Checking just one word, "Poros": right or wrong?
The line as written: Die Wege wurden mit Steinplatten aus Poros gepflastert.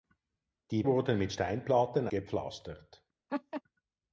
wrong